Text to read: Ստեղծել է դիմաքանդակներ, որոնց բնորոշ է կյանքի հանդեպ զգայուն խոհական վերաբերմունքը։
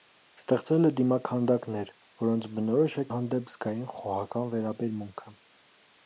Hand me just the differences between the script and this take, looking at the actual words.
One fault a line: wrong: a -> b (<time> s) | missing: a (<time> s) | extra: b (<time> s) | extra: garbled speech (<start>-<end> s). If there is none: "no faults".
missing: կյանքի (3.1 s)